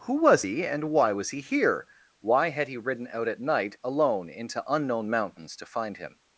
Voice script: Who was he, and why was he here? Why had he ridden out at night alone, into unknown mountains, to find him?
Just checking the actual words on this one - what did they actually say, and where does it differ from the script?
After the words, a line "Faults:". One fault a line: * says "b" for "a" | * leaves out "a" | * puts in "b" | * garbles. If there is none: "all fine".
Who was he, and why was he here? Why had he ridden out at night alone, into unknown mountains, to find him?
Faults:
all fine